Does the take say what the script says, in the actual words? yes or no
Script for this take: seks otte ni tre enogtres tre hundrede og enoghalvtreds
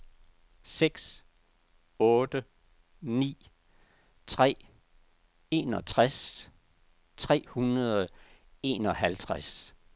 yes